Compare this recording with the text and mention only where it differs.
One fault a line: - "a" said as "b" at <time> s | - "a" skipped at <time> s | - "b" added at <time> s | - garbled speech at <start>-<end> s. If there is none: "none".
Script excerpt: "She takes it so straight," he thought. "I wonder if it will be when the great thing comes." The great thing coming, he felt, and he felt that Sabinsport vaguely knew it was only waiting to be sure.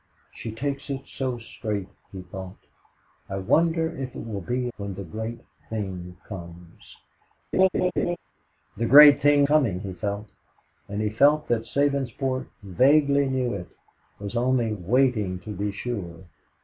none